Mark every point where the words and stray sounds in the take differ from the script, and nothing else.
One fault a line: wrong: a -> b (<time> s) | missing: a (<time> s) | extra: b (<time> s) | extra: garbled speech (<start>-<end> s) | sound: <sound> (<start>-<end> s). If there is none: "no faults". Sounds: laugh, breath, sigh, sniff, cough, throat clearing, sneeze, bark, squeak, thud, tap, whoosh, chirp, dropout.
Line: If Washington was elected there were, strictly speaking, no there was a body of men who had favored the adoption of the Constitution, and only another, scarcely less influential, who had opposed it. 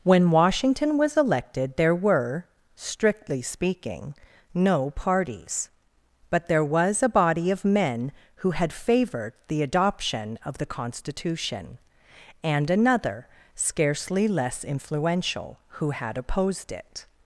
wrong: If -> When (0.0 s)
extra: parties but (4.9 s)
missing: only (12.7 s)